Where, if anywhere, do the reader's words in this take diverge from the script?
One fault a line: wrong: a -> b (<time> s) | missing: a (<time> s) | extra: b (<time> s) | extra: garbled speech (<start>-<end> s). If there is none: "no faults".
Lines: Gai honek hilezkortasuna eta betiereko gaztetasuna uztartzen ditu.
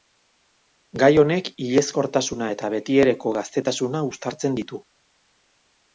no faults